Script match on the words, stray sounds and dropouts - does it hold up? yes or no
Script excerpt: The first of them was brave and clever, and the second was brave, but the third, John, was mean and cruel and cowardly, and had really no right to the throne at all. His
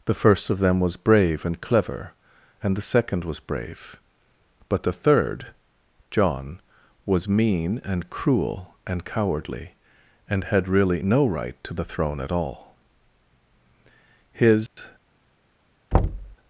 no